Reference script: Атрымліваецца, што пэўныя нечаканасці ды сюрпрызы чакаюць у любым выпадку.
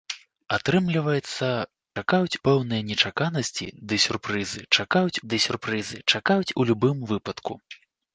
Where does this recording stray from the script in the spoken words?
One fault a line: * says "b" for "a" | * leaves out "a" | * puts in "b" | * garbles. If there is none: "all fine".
* says "чакаюць" for "што"
* puts in "ды сюрпрызы чакаюць"